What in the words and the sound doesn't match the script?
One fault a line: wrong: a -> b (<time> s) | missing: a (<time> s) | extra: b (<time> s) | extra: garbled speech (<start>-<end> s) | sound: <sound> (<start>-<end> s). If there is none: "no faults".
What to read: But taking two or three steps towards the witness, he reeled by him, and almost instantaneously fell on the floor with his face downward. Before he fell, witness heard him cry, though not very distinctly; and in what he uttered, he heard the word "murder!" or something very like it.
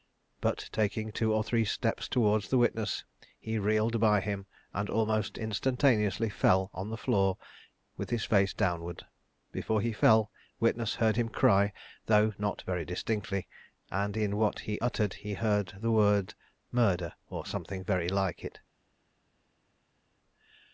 no faults